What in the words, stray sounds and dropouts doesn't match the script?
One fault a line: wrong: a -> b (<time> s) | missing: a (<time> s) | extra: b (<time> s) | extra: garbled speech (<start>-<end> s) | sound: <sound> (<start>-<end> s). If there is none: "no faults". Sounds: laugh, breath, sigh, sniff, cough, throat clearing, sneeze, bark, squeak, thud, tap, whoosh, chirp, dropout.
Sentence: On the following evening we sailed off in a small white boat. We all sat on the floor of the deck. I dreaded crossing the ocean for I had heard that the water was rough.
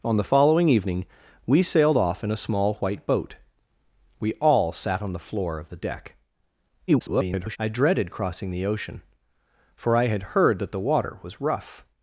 extra: garbled speech (6.9-7.6 s)